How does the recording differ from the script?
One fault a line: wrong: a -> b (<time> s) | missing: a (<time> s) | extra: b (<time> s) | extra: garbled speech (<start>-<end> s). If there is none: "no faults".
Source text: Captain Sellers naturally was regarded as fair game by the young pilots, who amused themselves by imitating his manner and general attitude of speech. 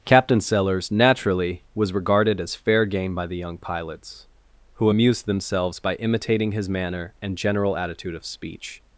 no faults